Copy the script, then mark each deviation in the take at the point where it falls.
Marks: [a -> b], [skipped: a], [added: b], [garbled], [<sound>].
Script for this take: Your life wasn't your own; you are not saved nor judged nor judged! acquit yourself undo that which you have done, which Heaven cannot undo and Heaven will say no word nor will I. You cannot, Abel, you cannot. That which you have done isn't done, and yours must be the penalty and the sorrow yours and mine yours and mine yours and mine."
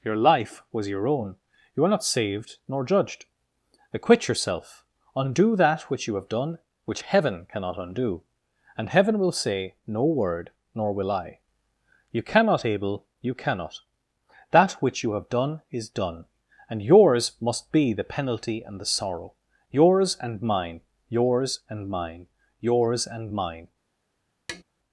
Your life [wasn't -> was] your own; you are not saved nor judged [skipped: nor judged!] acquit yourself undo that which you have done, which Heaven cannot undo and Heaven will say no word nor will I. You cannot, Abel, you cannot. That which you have done [isn't -> is] done, and yours must be the penalty and the sorrow yours and mine yours and mine yours and mine." [tap]